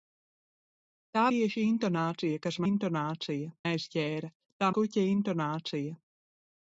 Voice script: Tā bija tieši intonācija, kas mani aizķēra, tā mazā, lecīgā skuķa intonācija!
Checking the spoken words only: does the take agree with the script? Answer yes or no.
no